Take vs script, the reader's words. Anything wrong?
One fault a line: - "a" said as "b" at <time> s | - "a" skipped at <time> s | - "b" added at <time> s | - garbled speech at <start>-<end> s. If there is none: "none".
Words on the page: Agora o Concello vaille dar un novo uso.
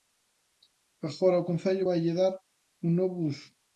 none